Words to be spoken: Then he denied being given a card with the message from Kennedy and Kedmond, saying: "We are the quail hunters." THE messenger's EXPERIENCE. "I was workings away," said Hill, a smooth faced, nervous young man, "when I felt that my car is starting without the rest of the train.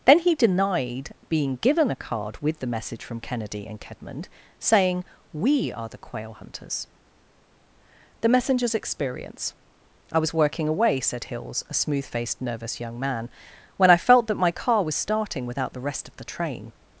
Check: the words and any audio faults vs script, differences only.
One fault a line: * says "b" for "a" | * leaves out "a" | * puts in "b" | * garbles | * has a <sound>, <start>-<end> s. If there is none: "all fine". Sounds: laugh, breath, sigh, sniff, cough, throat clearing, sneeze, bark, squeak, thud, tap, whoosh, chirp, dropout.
* says "working" for "workings"
* says "Hills" for "Hill"
* says "was" for "is"